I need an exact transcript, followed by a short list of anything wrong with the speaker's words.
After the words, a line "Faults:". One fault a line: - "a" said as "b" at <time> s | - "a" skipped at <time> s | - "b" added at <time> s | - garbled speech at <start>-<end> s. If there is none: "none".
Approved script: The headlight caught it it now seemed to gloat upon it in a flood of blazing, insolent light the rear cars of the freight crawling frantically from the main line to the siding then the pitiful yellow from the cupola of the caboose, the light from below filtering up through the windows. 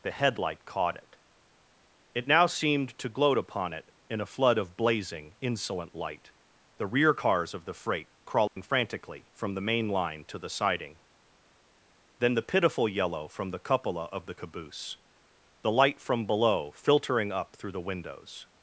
The headlight caught it it now seemed to gloat upon it in a flood of blazing, insolent light the rear cars of the freight crawling frantically from the main line to the siding then the pitiful yellow from the cupola of the caboose, the light from below filtering up through the windows.
Faults:
none